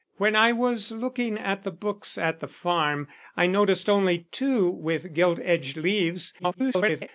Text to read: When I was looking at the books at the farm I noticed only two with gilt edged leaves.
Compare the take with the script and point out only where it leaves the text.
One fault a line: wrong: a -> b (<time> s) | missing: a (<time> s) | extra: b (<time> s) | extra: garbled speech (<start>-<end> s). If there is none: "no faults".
extra: garbled speech (6.4-7.1 s)